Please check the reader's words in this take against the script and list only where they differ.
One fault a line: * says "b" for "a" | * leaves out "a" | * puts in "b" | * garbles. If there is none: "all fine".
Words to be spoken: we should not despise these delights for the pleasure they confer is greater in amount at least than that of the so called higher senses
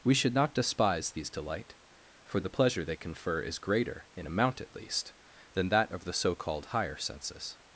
* says "delight" for "delights"